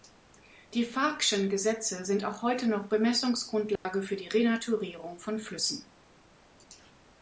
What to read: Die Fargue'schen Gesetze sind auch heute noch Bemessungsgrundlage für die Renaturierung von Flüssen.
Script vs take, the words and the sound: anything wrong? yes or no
yes